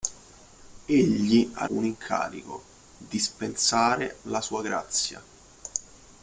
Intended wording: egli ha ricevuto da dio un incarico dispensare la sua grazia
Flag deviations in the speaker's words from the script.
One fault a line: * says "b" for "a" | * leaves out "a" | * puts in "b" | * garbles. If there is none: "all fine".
* leaves out "ricevuto da dio"